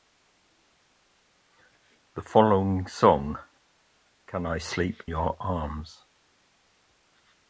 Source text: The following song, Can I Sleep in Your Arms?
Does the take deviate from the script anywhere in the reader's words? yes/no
yes